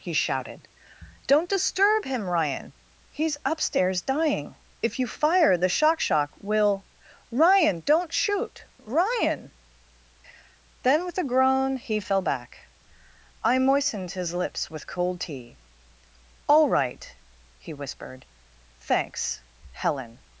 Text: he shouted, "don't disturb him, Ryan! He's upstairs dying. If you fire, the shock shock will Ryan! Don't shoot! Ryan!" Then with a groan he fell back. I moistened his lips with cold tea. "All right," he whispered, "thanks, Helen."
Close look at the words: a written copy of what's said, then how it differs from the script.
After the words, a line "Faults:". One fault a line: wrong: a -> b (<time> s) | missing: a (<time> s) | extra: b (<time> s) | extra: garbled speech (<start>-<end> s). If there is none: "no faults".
he shouted, "don't disturb him, Ryan! He's upstairs dying. If you fire, the shock shock will Ryan! Don't shoot! Ryan!" Then with a groan he fell back. I moistened his lips with cold tea. "All right," he whispered, "thanks, Helen."
Faults:
no faults